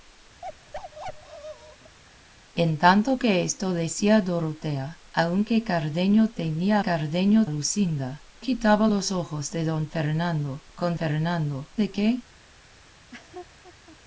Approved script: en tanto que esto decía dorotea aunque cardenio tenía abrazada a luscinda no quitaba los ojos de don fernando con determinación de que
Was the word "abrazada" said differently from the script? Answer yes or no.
yes